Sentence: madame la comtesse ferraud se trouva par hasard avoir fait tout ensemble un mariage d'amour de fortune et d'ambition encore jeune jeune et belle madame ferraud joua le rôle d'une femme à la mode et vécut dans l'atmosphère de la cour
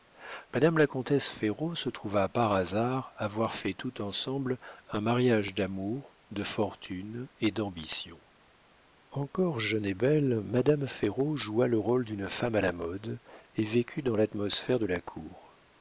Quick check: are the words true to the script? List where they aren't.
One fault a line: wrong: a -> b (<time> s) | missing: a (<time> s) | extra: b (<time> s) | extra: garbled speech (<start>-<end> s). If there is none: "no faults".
missing: jeune (9.8 s)